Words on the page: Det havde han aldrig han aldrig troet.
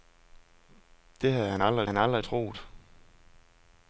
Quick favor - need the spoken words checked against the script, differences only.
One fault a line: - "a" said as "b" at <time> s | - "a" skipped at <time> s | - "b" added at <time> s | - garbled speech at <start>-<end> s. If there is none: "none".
none